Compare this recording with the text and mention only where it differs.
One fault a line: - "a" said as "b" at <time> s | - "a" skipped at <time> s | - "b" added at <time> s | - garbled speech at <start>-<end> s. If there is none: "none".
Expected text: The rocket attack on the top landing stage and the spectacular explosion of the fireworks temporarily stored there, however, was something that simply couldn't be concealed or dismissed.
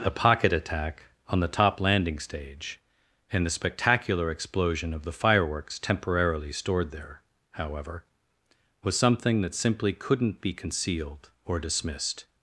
- "rocket" said as "pocket" at 0.1 s